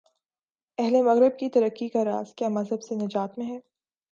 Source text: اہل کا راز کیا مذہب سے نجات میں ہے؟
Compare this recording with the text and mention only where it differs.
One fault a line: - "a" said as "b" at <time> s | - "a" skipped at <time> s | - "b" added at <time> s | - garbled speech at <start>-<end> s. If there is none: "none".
- "مغرب کی ترقی" added at 1.0 s